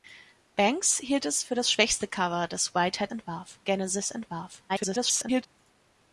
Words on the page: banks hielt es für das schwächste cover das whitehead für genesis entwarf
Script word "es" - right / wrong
right